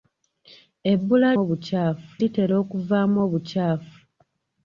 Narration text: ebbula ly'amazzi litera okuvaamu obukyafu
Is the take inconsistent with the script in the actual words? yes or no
yes